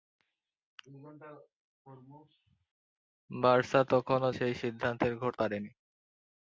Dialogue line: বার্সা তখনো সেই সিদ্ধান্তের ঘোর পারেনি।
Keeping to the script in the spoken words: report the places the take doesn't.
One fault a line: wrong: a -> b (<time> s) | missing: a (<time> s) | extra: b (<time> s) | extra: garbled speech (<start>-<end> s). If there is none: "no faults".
no faults